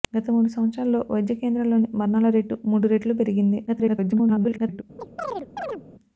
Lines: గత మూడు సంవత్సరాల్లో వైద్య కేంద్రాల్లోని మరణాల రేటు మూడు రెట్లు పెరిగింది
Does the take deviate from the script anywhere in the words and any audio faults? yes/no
yes